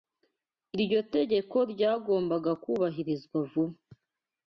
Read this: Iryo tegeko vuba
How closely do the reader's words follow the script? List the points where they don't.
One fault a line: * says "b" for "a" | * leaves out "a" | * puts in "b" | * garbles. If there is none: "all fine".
* puts in "ryagombaga kubahirizwa"